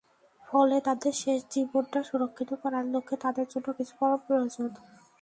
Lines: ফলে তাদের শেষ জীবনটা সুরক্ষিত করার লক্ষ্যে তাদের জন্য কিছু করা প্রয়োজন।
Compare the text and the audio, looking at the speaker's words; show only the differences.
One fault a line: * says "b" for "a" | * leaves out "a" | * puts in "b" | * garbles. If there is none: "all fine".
all fine